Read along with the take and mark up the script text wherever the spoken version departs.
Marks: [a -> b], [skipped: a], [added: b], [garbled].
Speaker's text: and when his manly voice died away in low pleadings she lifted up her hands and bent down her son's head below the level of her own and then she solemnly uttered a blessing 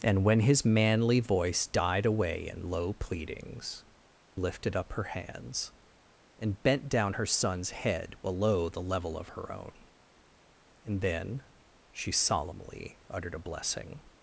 and when his manly voice died away in low pleadings [skipped: she] lifted up her hands and bent down her son's head below the level of her own and then she solemnly uttered a blessing